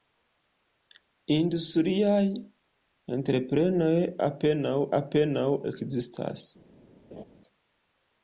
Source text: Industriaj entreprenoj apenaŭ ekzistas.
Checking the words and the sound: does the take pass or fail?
fail